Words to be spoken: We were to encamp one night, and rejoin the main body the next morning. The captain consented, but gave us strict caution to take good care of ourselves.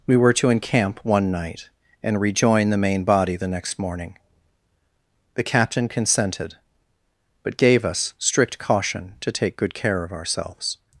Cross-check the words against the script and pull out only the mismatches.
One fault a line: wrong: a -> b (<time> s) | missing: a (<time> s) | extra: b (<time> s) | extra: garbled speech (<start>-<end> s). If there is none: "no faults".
no faults